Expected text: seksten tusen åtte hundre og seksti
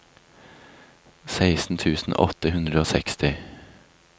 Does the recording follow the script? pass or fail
pass